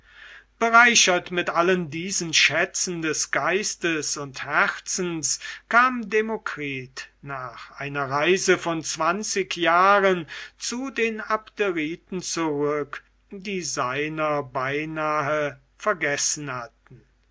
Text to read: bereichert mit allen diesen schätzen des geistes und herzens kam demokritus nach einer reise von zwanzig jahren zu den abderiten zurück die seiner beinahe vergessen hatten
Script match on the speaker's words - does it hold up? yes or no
yes